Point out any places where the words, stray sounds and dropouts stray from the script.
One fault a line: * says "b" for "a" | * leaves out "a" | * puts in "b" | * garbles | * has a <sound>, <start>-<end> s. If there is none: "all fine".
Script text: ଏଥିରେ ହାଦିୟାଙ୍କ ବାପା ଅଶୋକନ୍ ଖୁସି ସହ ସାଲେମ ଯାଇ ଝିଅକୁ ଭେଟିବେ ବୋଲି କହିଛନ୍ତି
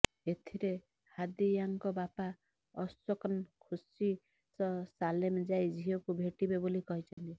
* has a dropout, 7.1-7.2 s